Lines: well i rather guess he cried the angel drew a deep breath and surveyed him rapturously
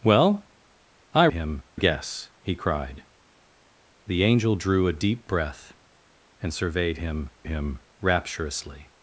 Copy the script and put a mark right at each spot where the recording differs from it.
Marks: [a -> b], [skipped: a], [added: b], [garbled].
well i [rather -> him] guess he cried the angel drew a deep breath and surveyed him [added: him] rapturously